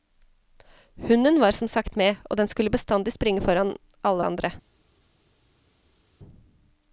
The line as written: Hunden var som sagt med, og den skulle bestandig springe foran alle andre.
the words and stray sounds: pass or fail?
pass